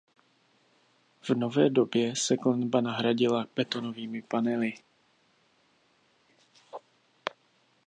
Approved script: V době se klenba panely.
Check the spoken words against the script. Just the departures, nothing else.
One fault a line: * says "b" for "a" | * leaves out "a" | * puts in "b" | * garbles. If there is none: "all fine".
* puts in "nové"
* puts in "nahradila betonovými"